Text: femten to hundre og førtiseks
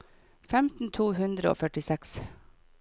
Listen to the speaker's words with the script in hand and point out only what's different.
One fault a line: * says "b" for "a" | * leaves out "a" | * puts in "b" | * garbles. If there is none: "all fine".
all fine